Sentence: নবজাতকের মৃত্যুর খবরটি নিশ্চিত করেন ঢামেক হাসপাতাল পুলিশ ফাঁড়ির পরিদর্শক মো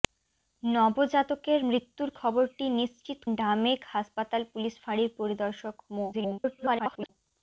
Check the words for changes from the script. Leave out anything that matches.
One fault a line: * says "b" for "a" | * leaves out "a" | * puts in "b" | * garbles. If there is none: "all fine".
* leaves out "করেন"
* garbles